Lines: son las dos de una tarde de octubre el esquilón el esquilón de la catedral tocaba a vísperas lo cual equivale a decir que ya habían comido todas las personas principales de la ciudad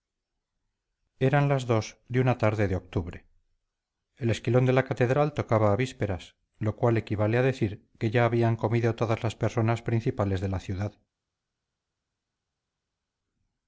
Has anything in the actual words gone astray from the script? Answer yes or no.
yes